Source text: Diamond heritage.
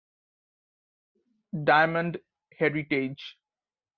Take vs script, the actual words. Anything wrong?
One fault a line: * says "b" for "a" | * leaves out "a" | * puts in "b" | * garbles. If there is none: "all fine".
all fine